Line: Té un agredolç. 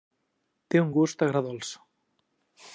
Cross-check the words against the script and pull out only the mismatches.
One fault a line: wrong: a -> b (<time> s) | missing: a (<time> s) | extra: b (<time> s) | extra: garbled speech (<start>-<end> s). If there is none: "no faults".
extra: gust (1.0 s)